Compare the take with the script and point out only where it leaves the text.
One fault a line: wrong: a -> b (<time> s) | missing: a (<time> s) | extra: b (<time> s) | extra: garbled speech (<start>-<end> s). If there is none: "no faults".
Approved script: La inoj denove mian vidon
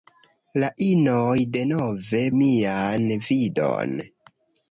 no faults